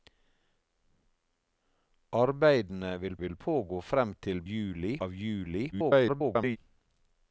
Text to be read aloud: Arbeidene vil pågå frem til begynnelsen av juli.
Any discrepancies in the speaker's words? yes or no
yes